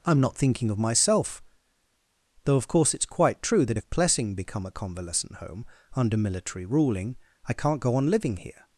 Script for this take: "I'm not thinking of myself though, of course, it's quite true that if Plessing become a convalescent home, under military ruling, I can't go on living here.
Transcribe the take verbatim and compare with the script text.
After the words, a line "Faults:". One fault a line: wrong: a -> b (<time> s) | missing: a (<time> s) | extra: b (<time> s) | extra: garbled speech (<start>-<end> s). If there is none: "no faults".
"I'm not thinking of myself though, of course, it's quite true that if Plessing become a convalescent home, under military ruling, I can't go on living here.
Faults:
no faults